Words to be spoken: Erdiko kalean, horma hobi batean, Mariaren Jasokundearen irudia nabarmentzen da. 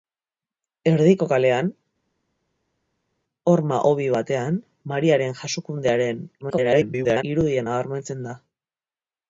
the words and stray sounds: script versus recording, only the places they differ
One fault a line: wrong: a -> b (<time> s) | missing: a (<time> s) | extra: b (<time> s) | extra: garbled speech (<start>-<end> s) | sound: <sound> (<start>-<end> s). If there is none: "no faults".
extra: garbled speech (6.4-7.2 s)